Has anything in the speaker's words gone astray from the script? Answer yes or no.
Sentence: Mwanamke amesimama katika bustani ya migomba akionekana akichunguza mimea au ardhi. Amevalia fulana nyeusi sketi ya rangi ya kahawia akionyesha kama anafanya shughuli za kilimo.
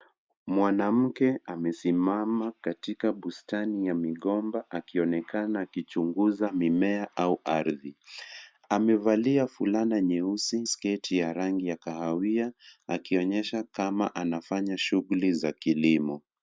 no